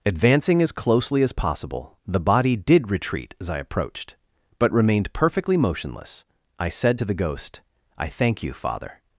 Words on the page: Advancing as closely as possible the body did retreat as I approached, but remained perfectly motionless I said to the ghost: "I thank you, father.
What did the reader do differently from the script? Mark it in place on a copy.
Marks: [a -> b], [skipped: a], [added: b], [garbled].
Advancing as closely as possible the body did retreat as I approached, but remained perfectly motionless I said to the ghost: "I thank you, father.